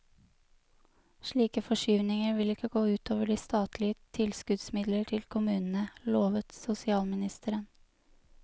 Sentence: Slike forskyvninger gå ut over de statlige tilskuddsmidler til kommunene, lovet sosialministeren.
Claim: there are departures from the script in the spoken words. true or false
true